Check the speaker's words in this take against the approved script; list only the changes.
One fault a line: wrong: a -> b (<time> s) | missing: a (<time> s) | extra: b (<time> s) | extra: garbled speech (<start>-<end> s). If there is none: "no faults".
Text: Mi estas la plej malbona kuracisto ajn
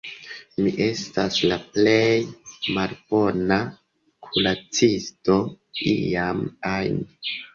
extra: iam (6.0 s)